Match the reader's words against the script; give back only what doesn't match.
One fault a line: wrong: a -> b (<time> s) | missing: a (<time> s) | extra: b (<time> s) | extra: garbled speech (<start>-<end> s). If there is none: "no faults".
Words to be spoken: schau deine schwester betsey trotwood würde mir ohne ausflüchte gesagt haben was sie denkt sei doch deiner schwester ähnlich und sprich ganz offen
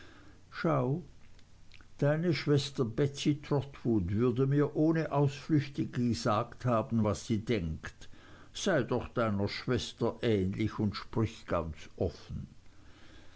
no faults